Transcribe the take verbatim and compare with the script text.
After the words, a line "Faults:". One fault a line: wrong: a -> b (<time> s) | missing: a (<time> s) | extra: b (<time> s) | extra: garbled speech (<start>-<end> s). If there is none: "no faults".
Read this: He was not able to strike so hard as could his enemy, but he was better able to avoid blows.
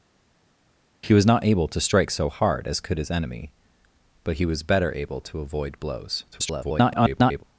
He was not able to strike so hard as could his enemy, but he was better able to avoid blows. [garbled]
Faults:
extra: garbled speech (6.3-7.4 s)